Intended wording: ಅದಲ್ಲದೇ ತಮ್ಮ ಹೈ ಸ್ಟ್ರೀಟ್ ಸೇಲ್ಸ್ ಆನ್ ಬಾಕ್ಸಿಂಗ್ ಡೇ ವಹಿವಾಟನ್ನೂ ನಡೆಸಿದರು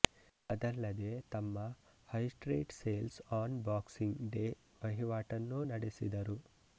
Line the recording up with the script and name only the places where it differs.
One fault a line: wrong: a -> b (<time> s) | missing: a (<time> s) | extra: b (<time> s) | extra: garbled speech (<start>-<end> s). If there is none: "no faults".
no faults